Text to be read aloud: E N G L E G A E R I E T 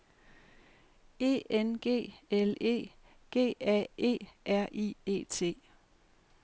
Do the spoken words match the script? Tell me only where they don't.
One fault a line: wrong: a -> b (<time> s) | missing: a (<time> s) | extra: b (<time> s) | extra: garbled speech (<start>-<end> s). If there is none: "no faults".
no faults